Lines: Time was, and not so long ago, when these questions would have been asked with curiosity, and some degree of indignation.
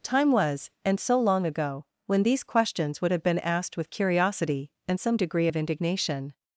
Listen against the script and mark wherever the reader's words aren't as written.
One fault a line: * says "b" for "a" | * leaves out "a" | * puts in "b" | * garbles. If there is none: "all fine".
* leaves out "not"